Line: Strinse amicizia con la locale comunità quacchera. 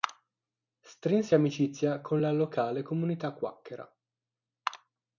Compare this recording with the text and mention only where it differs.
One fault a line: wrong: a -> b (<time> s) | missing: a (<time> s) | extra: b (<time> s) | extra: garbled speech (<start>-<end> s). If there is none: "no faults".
no faults